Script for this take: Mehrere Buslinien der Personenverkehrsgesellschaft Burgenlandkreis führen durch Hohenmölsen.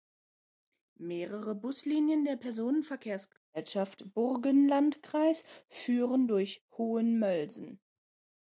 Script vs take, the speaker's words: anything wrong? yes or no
no